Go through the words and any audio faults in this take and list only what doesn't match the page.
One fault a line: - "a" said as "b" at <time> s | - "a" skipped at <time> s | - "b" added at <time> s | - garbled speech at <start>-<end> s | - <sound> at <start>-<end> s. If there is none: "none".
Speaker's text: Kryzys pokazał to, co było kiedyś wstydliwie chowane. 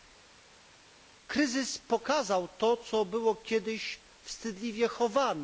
none